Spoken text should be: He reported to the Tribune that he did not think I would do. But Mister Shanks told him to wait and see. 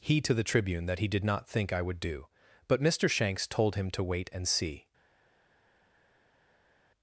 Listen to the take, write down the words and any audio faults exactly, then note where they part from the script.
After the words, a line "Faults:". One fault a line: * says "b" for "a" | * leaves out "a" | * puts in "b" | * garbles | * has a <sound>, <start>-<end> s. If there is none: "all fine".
He to the Tribune that he did not think I would do. But Mister Shanks told him to wait and see.
Faults:
* leaves out "reported"